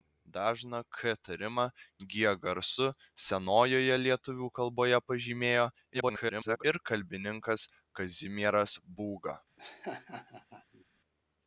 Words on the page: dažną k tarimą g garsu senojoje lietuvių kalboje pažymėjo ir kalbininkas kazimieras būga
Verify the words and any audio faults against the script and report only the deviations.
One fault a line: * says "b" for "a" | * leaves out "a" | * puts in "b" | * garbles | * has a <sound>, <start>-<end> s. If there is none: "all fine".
* garbles
* has a laugh, 9.6-10.9 s